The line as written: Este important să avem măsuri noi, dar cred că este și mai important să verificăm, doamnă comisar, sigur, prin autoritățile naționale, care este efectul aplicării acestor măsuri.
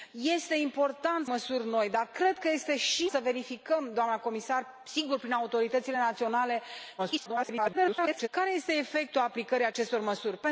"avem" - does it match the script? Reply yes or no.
no